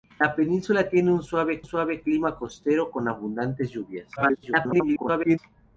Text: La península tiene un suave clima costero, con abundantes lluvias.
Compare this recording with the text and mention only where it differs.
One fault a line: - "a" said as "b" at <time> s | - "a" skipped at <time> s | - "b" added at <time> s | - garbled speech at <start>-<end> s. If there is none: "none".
- "suave" added at 1.6 s
- garbled speech at 4.2-5.4 s